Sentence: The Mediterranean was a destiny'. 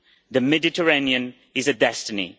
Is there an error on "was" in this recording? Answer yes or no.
yes